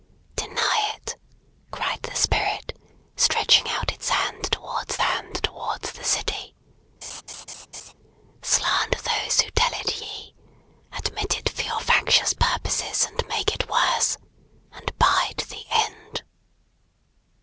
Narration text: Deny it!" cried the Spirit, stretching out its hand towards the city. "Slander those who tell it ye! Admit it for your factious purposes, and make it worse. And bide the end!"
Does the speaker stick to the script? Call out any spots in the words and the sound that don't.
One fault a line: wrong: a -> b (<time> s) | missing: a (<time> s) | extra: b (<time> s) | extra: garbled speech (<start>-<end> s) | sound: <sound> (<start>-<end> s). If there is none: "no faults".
extra: hand towards (5.0 s)
sound: laugh (7.0-7.9 s)